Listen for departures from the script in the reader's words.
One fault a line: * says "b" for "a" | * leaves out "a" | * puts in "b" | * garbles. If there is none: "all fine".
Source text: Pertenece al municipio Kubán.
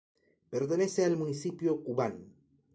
all fine